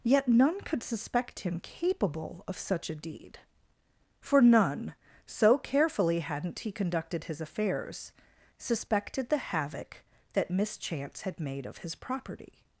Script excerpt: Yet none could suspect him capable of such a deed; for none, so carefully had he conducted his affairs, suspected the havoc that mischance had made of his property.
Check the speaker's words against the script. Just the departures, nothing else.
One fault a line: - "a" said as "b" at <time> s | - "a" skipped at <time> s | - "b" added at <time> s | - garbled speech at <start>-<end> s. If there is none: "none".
- "had" said as "hadn't" at 6.2 s